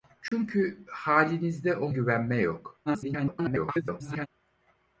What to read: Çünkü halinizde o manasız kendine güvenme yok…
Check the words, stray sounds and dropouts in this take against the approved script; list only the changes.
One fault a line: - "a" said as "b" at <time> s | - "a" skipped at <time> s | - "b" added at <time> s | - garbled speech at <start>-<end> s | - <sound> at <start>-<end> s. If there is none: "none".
- dropout at 0.3-0.3 s
- "manasız kendine" skipped at 1.9 s
- garbled speech at 2.9-4.3 s